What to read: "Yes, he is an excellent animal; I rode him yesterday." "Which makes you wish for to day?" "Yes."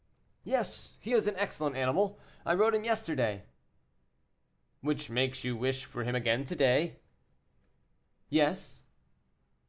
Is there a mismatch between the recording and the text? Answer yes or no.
yes